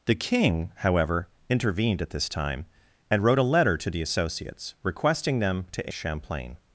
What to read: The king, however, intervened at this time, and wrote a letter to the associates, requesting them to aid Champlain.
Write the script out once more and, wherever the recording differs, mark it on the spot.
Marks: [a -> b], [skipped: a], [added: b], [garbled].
The king, however, intervened at this time, and wrote a letter to the associates, requesting them to [skipped: aid] Champlain.